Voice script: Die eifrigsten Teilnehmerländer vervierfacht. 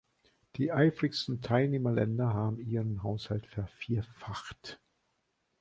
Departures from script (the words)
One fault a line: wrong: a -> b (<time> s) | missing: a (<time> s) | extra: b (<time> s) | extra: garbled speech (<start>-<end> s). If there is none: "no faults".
extra: haben ihren Haushalt (2.3 s)